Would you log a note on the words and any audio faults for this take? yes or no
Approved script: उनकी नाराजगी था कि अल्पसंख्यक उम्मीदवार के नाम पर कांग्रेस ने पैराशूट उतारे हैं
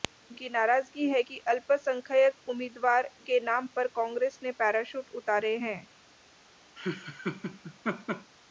yes